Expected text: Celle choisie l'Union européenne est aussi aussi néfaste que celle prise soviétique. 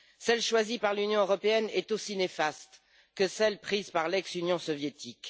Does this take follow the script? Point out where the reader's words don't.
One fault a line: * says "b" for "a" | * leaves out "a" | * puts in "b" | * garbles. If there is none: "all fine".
* puts in "par"
* leaves out "aussi"
* puts in "par l'ex Union"